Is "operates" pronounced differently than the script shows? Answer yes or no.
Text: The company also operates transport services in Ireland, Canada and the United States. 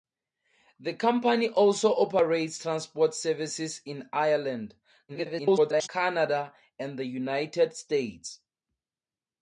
no